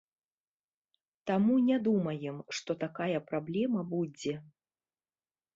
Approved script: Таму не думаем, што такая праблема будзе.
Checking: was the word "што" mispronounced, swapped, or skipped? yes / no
no